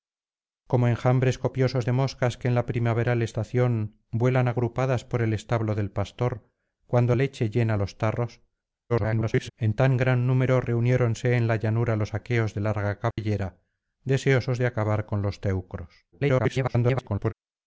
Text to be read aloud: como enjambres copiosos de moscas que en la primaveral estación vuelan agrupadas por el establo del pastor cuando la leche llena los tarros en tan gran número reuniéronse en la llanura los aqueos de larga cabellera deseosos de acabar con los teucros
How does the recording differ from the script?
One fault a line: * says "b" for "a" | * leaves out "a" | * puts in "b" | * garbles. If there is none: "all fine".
* leaves out "la"
* garbles
* garbles